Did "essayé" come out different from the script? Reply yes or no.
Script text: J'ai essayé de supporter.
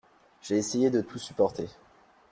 no